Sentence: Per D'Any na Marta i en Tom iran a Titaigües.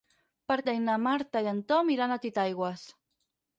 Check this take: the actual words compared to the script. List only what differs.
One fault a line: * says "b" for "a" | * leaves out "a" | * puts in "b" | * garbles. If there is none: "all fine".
all fine